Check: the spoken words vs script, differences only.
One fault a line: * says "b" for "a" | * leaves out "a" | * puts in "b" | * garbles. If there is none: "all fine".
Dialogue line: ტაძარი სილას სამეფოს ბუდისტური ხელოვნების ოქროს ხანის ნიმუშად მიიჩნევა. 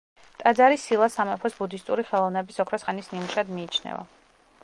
all fine